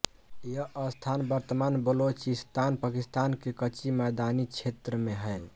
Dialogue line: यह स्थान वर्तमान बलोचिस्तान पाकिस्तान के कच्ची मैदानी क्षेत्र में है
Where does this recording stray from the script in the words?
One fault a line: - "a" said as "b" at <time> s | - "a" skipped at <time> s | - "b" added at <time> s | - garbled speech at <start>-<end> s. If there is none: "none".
none